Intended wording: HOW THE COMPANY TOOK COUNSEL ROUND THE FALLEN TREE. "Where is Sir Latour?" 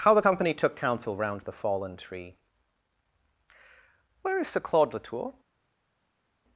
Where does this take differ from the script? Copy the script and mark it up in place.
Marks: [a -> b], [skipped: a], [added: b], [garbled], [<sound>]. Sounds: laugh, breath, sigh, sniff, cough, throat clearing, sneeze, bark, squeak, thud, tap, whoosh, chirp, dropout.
HOW THE COMPANY TOOK COUNSEL ROUND THE FALLEN TREE. "Where is Sir [added: Claude] Latour?"